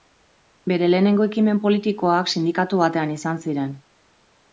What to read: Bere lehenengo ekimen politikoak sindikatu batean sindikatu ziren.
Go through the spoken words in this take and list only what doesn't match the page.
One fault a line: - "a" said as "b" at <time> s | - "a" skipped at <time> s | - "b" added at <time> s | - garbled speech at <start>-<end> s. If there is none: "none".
- "sindikatu" said as "izan" at 3.2 s